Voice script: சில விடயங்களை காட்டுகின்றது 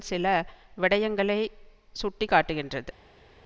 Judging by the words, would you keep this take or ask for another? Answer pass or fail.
fail